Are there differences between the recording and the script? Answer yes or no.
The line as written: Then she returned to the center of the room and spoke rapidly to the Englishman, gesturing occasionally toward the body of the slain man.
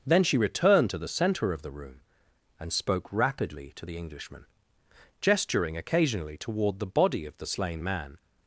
no